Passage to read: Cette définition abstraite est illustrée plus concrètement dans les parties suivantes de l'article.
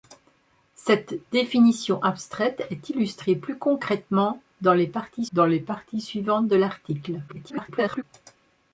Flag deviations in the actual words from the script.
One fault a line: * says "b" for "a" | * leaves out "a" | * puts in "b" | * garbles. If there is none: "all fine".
* puts in "dans les parties"
* garbles